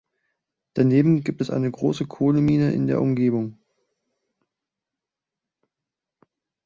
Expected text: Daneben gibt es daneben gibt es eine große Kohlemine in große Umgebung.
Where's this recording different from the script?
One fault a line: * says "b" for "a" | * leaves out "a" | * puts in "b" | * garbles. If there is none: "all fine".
* leaves out "daneben gibt es"
* says "der" for "große"